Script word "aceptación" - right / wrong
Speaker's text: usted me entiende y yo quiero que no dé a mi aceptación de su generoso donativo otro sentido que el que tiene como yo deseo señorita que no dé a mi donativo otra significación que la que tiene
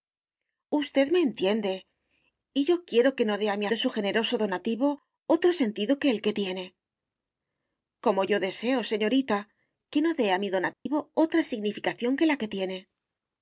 wrong